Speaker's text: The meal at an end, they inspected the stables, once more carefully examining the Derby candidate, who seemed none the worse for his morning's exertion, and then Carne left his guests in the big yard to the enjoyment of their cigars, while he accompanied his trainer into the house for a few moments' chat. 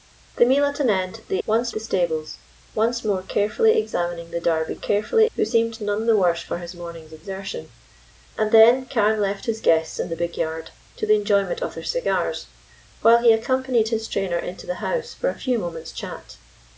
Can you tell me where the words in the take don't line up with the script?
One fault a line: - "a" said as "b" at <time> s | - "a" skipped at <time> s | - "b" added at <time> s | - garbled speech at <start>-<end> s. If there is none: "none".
- "inspected" said as "once" at 1.4 s
- "candidate" said as "carefully" at 4.7 s